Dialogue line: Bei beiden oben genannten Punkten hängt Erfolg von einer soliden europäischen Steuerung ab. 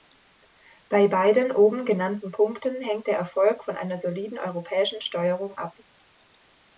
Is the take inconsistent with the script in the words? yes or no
yes